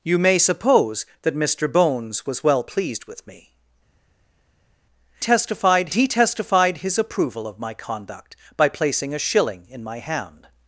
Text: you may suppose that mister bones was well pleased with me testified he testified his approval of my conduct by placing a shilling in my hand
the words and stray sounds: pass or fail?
pass